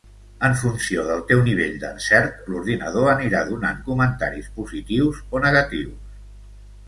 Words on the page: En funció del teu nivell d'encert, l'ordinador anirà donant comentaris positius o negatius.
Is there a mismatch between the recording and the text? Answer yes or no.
no